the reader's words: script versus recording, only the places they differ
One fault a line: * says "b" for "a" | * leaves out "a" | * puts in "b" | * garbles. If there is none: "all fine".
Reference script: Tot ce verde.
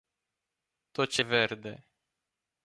all fine